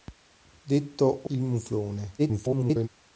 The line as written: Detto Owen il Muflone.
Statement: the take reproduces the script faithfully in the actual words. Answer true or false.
false